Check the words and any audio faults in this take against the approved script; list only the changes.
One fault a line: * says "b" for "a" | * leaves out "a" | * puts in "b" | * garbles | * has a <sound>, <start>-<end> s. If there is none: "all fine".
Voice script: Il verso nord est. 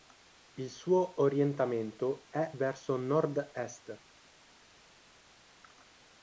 * puts in "suo orientamento è"